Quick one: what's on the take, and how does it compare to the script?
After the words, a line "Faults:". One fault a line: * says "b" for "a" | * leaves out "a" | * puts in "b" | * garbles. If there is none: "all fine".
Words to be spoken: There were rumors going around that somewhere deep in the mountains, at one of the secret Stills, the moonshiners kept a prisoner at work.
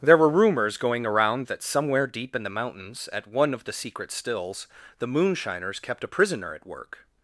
There were rumors going around that somewhere deep in the mountains, at one of the secret Stills, the moonshiners kept a prisoner at work.
Faults:
all fine